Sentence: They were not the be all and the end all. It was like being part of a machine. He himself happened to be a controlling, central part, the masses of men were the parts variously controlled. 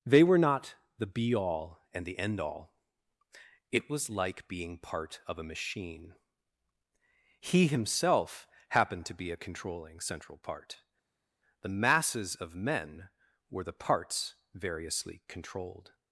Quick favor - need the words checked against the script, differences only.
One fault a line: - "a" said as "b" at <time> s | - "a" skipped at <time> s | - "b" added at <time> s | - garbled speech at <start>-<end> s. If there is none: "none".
none